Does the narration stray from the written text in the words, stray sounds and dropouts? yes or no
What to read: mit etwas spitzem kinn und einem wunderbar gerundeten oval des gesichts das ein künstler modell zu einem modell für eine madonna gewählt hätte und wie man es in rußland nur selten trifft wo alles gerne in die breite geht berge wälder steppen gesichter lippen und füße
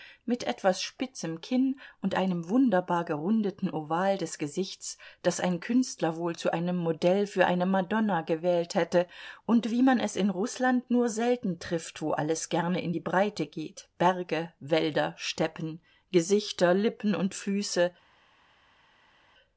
yes